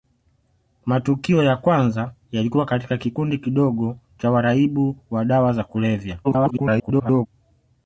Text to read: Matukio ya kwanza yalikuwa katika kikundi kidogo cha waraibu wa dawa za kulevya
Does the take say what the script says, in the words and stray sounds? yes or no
no